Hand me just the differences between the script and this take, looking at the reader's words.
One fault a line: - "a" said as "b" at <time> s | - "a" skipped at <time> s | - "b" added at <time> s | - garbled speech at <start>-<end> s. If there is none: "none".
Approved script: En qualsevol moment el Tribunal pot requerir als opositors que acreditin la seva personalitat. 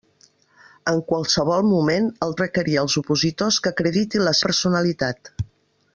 - "Tribunal pot" skipped at 2.3 s
- "seva" skipped at 4.4 s